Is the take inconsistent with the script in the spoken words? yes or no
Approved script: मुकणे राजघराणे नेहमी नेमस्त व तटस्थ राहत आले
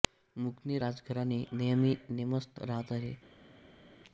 yes